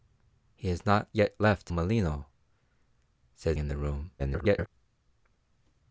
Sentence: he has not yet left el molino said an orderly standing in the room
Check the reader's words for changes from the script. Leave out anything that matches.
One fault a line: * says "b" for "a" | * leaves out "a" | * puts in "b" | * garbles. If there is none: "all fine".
* leaves out "el"
* leaves out "an orderly standing"
* garbles